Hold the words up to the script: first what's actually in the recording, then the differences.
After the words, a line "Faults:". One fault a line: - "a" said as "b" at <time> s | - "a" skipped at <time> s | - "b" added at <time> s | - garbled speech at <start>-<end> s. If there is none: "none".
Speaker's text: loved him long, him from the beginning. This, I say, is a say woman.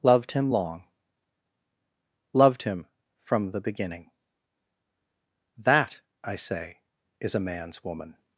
loved him long, loved him from the beginning. That, I say, is a man's woman.
Faults:
- "loved" added at 2.3 s
- "This" said as "That" at 5.6 s
- "say" said as "man's" at 7.4 s